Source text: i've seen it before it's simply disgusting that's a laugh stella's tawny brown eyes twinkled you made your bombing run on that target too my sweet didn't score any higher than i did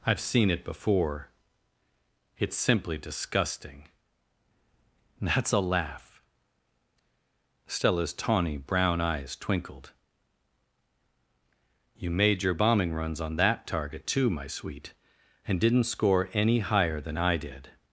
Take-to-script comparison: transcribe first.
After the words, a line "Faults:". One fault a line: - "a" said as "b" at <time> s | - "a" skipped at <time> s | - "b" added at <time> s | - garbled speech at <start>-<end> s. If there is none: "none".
i've seen it before it's simply disgusting that's a laugh stella's tawny brown eyes twinkled you made your bombing runs on that target too my sweet and didn't score any higher than i did
Faults:
- "run" said as "runs" at 12.9 s
- "and" added at 15.5 s